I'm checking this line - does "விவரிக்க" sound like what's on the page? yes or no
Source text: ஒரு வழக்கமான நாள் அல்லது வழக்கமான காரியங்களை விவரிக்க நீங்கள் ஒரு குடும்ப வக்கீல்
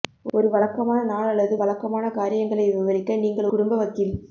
yes